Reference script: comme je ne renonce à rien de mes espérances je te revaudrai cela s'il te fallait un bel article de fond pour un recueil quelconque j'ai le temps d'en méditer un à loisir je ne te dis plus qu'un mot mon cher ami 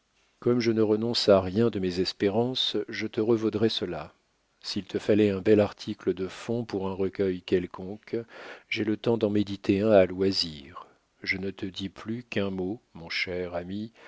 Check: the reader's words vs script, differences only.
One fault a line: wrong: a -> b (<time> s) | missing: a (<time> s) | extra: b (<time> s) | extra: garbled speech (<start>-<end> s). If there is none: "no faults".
no faults